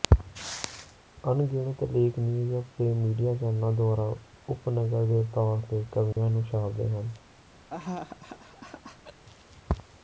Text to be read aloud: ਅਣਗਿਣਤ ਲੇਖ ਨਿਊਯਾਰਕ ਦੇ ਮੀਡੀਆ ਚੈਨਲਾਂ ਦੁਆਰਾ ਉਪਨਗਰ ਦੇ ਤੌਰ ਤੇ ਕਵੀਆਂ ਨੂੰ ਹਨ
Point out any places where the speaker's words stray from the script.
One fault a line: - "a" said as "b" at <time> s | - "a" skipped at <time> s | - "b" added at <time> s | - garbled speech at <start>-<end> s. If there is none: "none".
- "ਛਾਪਦੇ" added at 6.4 s